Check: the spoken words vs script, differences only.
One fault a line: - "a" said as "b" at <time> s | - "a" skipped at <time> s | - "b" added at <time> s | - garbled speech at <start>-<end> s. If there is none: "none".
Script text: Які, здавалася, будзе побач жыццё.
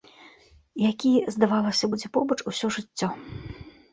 - "усё" added at 2.5 s